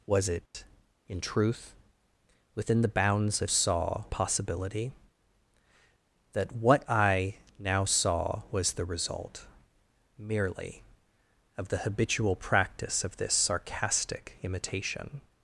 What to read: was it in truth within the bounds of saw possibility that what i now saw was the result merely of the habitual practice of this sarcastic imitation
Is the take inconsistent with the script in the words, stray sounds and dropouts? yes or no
yes